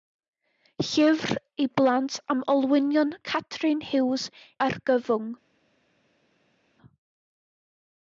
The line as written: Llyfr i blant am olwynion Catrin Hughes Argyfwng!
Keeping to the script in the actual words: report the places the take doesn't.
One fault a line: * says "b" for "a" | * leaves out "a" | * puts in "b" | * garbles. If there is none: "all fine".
all fine